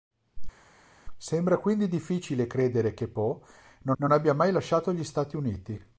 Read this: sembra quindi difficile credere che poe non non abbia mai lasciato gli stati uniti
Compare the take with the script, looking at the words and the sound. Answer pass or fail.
pass